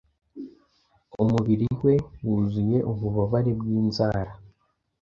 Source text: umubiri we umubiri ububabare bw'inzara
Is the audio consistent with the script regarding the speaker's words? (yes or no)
no